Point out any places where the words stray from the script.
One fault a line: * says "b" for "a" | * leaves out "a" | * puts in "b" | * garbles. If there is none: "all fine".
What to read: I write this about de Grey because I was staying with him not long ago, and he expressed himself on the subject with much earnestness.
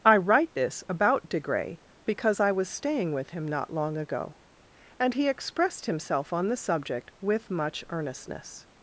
all fine